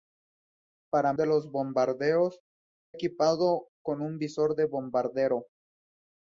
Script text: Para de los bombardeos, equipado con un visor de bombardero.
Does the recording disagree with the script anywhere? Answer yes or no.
no